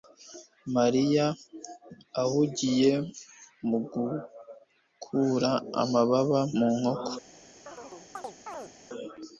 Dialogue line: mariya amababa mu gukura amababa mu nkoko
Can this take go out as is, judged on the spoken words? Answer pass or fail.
fail